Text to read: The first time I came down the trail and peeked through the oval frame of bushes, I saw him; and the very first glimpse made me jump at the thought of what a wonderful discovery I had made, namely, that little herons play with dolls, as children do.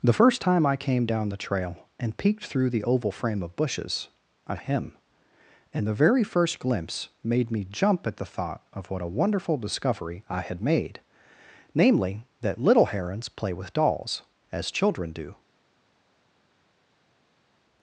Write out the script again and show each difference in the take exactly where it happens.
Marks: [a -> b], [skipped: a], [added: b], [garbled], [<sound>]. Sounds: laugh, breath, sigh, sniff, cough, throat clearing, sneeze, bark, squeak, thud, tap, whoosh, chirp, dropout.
The first time I came down the trail and peeked through the oval frame of bushes, I [skipped: saw] him; and the very first glimpse made me jump at the thought of what a wonderful discovery I had made, namely, that little herons play with dolls, as children do.